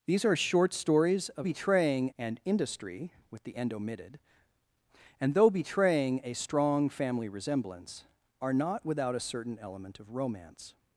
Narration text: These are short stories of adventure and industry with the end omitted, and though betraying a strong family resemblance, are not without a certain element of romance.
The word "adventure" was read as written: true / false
false